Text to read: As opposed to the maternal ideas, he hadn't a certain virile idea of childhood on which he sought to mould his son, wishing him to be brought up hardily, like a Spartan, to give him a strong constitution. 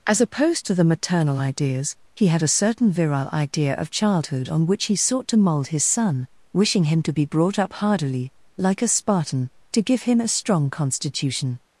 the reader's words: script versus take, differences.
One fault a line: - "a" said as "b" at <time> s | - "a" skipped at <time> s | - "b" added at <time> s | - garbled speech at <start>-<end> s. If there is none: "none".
- "hadn't" said as "had" at 2.3 s